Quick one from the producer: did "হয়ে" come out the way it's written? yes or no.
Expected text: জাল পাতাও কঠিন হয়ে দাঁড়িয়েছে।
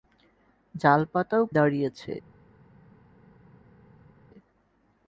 no